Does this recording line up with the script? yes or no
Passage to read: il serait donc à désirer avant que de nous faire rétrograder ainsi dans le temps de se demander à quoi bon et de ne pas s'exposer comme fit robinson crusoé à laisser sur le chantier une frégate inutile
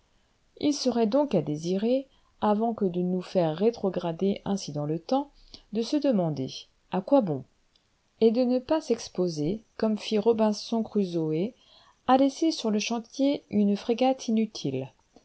yes